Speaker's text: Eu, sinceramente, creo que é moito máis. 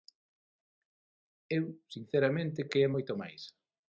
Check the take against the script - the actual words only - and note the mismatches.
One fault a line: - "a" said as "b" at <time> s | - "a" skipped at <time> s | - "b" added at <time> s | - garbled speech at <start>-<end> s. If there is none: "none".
- "creo" skipped at 2.7 s